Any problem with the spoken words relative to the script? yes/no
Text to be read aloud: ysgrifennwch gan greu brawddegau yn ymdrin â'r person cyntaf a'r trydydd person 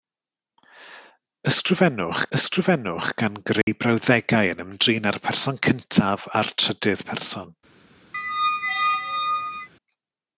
yes